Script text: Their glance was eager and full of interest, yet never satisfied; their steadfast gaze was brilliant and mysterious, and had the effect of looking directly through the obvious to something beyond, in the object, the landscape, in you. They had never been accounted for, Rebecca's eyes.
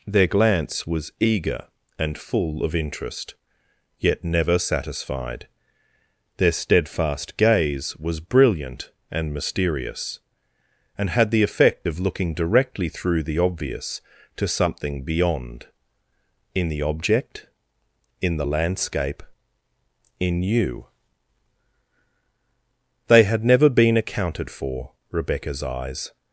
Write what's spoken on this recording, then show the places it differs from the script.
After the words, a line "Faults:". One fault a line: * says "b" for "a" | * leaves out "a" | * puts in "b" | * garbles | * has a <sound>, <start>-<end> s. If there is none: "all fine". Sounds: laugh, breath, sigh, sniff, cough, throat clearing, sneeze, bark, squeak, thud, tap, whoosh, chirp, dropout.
Their glance was eager and full of interest, yet never satisfied; their steadfast gaze was brilliant and mysterious, and had the effect of looking directly through the obvious to something beyond, in the object, in the landscape, in you. They had never been accounted for, Rebecca's eyes.
Faults:
* puts in "in"